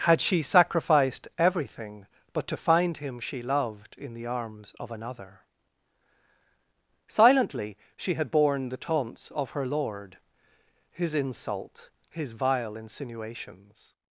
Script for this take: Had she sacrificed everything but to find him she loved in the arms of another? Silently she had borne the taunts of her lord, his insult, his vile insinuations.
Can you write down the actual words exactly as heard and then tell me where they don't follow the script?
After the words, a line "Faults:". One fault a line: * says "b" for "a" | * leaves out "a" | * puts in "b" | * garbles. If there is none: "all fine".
Had she sacrificed everything but to find him she loved in the arms of another? Silently she had borne the taunts of her lord, his insult, his vile insinuations.
Faults:
all fine